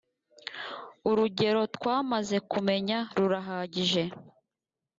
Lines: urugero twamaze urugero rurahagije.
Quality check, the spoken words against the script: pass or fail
fail